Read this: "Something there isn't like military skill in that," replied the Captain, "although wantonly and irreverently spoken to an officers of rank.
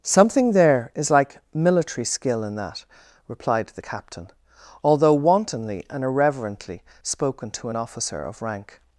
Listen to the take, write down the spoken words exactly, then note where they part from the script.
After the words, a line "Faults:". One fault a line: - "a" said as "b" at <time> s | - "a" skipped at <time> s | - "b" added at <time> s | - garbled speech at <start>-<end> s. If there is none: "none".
"Something there is like military skill in that," replied the Captain, "although wantonly and irreverently spoken to an officer of rank.
Faults:
- "isn't" said as "is" at 0.9 s
- "officers" said as "officer" at 7.8 s